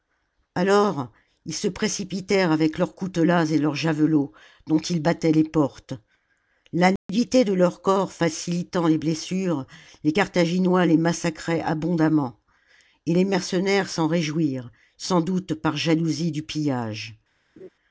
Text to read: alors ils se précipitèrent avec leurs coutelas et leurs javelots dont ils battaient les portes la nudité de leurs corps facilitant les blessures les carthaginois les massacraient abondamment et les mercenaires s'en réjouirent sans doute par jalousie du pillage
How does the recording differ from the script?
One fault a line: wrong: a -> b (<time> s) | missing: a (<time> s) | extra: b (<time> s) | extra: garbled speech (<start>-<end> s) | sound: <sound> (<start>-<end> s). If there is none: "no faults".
sound: dropout (7.0-7.1 s)
sound: laugh (17.6-17.7 s)